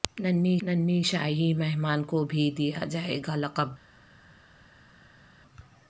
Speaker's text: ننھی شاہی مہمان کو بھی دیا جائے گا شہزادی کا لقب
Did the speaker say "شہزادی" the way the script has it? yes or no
no